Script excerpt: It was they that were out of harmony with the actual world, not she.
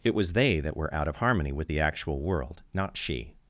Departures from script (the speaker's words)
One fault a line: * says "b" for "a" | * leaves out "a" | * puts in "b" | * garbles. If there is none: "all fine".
all fine